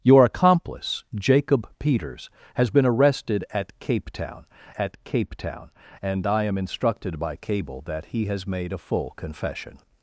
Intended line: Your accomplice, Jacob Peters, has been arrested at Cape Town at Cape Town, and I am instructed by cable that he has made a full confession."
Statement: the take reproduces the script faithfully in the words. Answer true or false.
true